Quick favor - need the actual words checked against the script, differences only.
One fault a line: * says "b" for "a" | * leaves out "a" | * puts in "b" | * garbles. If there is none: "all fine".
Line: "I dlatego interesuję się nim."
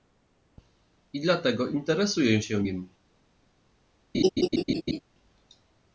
all fine